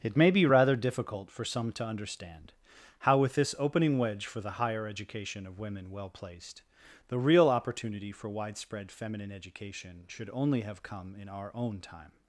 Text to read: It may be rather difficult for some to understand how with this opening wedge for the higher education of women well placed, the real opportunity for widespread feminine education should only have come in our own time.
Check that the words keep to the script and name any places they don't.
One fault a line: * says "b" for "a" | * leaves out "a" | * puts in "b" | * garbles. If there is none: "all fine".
all fine